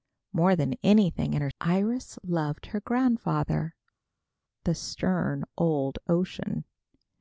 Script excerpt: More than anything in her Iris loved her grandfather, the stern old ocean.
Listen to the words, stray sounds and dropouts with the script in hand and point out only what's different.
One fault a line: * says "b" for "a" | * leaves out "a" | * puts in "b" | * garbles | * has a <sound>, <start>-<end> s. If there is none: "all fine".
all fine